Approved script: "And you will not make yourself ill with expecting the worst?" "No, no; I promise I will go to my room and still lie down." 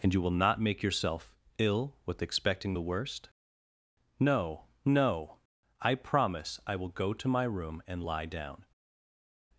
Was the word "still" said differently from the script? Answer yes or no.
yes